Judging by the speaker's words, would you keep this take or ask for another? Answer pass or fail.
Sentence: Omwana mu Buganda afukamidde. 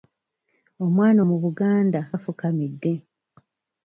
pass